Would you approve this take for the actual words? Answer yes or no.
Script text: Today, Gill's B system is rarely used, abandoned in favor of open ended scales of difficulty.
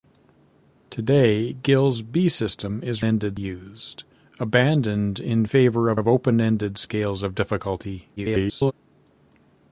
no